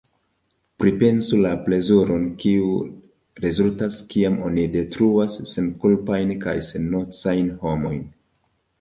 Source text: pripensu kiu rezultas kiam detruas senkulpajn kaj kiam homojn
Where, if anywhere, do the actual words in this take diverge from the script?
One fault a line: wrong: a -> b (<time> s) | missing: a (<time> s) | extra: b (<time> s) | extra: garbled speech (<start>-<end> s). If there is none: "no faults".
extra: la plezuron (1.4 s)
extra: oni (4.5 s)
wrong: kiam -> sennocajn (6.8 s)